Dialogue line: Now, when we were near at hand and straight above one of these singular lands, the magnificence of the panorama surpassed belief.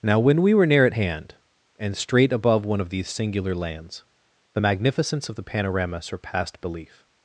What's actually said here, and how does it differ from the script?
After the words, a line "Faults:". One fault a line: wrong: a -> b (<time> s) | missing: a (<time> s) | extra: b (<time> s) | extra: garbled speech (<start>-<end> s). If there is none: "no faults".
Now, when we were near at hand and straight above one of these singular lands, the magnificence of the panorama surpassed belief.
Faults:
no faults